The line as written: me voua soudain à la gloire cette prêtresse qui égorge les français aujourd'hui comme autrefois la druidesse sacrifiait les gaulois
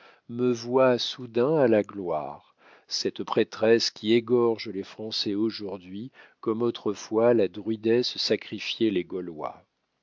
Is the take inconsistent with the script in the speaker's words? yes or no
no